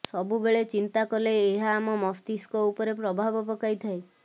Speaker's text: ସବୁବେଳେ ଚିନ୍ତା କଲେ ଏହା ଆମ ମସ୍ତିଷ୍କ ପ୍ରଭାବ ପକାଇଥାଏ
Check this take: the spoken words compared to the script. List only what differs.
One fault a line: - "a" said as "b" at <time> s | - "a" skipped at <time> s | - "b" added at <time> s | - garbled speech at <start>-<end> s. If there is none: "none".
- "ଉପରେ" added at 2.7 s